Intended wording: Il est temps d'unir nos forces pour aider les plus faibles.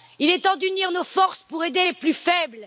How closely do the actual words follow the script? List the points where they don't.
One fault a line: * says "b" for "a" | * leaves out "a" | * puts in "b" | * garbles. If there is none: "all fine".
all fine